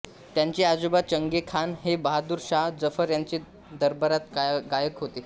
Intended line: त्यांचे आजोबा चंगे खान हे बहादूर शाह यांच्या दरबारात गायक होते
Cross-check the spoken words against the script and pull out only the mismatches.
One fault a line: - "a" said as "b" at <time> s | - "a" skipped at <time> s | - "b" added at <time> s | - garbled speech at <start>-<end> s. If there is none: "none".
- "जफर" added at 2.8 s